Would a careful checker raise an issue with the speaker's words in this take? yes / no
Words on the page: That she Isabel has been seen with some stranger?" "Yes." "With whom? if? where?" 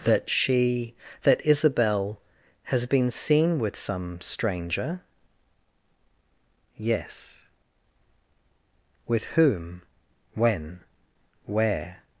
yes